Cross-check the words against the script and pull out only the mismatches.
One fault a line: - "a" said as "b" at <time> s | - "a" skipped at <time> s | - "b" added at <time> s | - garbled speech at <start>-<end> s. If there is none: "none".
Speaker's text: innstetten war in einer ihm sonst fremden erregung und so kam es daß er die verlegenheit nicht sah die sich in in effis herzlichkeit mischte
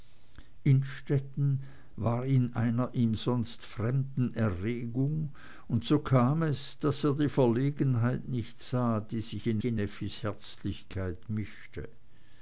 none